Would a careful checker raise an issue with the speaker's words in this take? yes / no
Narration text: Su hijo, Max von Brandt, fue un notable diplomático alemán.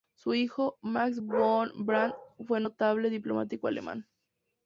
no